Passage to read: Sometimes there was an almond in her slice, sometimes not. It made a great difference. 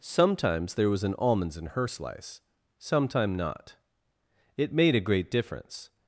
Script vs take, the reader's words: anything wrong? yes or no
yes